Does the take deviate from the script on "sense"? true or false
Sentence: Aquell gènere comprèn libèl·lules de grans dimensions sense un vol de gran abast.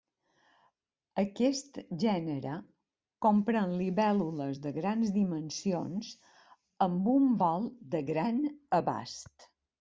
true